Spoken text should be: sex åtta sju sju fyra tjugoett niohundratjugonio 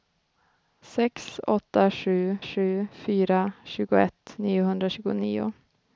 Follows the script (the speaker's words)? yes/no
yes